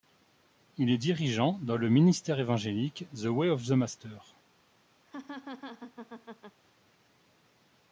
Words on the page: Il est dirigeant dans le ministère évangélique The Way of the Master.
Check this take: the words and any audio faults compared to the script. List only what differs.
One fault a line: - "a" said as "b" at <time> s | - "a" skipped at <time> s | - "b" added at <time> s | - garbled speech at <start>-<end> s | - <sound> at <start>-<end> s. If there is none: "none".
- laugh at 5.0-6.6 s